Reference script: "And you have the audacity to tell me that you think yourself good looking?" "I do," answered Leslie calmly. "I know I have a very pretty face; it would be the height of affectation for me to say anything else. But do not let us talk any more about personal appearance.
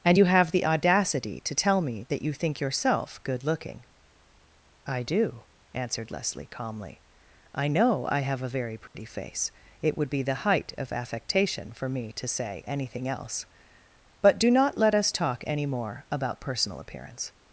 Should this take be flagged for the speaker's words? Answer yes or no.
no